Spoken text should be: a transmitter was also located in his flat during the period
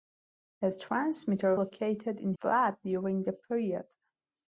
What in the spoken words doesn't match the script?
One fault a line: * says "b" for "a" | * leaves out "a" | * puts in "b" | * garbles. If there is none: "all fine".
* leaves out "was also"
* leaves out "his"